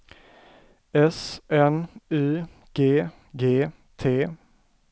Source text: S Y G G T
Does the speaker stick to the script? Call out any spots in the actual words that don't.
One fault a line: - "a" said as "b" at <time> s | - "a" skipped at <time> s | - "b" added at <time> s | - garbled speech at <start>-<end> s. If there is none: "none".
- "N" added at 1.5 s